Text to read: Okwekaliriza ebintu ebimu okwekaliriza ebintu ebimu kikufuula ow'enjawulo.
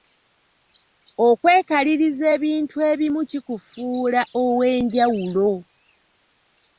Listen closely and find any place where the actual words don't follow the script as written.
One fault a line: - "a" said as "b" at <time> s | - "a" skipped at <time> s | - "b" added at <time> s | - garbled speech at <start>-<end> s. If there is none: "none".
- "okwekaliriza ebintu ebimu" skipped at 3.2 s